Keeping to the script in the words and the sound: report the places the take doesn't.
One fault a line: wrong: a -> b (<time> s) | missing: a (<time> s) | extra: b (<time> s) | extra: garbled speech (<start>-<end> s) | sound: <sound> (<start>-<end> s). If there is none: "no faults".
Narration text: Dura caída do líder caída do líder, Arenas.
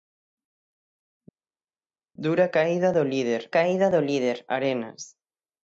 no faults